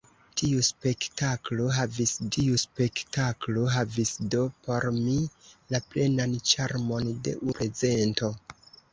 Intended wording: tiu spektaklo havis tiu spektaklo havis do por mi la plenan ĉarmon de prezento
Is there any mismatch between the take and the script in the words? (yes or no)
no